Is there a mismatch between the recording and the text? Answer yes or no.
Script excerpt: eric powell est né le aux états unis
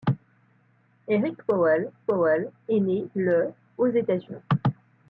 yes